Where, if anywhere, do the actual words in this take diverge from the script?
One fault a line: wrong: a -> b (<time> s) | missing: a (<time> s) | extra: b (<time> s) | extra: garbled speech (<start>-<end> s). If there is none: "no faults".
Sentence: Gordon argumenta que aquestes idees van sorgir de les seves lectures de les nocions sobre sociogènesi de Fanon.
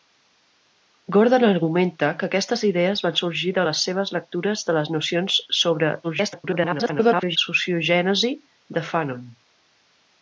extra: garbled speech (6.0-7.4 s)